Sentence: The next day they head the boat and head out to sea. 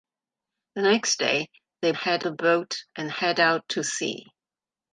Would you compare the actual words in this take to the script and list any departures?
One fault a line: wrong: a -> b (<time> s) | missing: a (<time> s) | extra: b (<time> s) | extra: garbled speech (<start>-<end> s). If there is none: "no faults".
no faults